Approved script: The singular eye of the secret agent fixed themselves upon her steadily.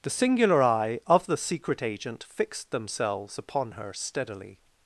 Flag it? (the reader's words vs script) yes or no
no